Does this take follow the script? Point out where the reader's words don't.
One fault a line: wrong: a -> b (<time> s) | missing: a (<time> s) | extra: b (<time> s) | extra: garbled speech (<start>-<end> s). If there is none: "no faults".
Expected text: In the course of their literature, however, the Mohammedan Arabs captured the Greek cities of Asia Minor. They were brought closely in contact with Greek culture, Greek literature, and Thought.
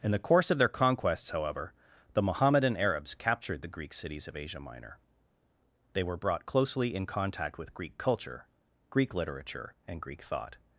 wrong: literature -> conquests (0.7 s)
extra: Greek (10.0 s)